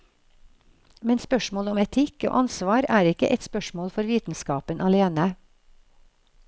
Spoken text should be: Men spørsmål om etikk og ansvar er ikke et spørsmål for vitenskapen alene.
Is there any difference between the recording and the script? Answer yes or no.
no